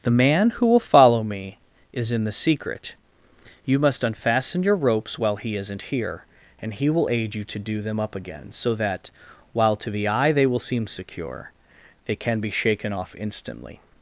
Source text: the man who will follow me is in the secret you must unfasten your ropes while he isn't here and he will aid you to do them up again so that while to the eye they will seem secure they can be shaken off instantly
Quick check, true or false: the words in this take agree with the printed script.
true